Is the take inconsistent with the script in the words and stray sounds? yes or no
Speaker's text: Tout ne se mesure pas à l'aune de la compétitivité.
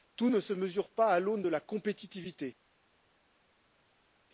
no